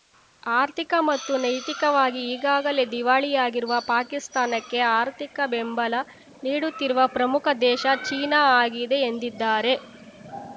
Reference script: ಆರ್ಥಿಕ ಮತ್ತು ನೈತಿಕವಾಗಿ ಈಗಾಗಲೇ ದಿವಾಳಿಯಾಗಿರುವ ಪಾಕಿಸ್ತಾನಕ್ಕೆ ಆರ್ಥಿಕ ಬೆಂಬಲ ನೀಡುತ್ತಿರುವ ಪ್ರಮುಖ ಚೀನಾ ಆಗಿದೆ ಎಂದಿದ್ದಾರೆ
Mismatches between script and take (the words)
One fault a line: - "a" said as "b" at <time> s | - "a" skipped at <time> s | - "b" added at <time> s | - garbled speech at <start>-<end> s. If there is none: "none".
- "ದೇಶ" added at 7.6 s